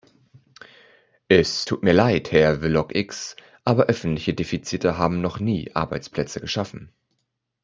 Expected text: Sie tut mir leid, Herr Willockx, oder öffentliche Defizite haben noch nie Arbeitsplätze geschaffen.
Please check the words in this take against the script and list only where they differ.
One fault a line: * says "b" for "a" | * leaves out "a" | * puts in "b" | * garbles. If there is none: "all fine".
* says "Es" for "Sie"
* says "aber" for "oder"